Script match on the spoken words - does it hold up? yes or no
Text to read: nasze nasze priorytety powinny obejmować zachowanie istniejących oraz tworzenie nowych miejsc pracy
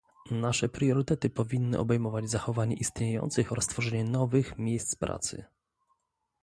no